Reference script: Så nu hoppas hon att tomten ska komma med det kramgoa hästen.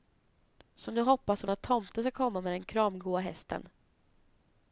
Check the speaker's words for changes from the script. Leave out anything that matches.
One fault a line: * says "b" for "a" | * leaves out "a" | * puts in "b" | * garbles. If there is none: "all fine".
* says "den" for "det"